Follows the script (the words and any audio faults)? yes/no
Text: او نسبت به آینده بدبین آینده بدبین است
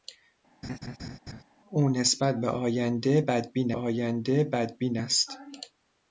no